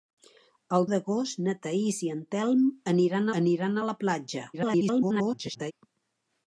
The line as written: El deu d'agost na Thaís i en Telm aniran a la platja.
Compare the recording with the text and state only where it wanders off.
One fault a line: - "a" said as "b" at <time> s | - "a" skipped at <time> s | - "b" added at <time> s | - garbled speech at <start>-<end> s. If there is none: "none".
- "deu" skipped at 0.9 s
- "aniran" added at 3.4 s
- garbled speech at 4.5-5.7 s